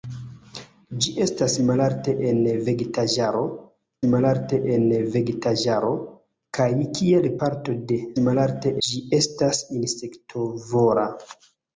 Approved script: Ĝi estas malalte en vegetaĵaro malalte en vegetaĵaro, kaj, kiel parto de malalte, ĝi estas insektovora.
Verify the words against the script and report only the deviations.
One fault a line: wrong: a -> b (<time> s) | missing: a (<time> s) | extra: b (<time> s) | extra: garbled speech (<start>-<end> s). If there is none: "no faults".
no faults